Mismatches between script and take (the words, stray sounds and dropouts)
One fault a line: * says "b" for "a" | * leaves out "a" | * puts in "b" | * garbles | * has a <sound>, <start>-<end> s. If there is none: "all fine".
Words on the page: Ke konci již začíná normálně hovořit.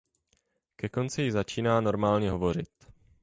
all fine